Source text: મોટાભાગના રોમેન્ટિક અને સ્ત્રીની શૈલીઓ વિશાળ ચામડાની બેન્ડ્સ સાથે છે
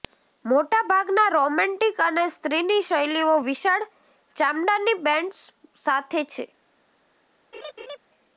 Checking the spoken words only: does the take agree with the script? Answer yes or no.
yes